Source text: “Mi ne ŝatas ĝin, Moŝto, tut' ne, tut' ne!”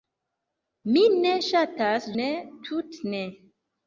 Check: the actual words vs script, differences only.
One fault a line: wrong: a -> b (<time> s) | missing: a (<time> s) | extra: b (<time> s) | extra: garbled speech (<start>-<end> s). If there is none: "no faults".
missing: ĝin Moŝto tut (2.1 s)